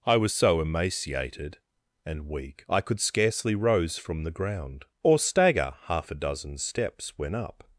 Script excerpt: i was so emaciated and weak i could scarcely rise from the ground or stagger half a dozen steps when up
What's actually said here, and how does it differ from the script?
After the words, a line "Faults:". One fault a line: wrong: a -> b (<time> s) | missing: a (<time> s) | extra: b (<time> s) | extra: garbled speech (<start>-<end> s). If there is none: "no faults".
i was so emaciated and weak i could scarcely rose from the ground or stagger half a dozen steps when up
Faults:
wrong: rise -> rose (3.5 s)